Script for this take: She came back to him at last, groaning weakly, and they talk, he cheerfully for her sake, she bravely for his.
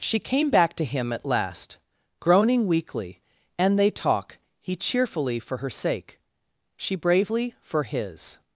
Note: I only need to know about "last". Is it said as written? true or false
true